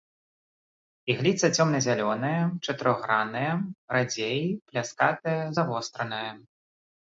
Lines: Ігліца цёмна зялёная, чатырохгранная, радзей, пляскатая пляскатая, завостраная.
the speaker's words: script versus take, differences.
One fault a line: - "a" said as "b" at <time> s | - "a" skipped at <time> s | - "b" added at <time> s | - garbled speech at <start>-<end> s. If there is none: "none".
- "пляскатая" skipped at 5.4 s